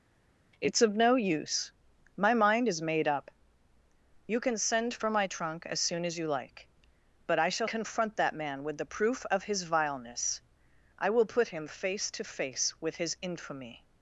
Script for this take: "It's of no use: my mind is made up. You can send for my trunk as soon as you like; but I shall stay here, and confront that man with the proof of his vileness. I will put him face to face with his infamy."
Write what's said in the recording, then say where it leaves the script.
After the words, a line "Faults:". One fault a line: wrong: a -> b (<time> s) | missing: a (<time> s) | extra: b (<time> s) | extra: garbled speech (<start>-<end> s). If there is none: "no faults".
"It's of no use: my mind is made up. You can send for my trunk as soon as you like; but I shall confront that man with the proof of his vileness. I will put him face to face with his infamy."
Faults:
missing: stay here and (7.7 s)